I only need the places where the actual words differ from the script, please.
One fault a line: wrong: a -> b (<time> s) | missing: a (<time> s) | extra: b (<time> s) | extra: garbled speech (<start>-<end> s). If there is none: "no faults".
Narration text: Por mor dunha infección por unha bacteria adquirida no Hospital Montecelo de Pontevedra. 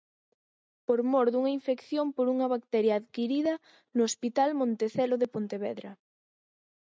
no faults